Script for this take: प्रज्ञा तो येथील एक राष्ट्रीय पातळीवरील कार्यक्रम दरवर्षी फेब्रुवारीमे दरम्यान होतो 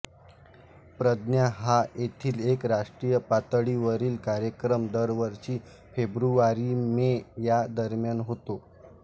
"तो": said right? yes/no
no